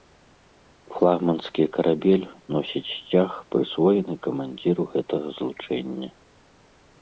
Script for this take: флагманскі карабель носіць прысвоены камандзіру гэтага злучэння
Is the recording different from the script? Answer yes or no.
yes